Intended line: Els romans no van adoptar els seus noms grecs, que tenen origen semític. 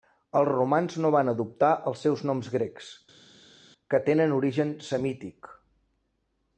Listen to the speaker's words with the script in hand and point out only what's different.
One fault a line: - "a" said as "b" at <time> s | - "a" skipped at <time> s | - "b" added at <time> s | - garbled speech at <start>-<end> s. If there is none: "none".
none